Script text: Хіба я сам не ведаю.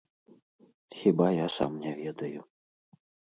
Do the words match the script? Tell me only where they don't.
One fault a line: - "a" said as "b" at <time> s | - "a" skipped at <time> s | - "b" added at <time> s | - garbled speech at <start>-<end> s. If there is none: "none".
none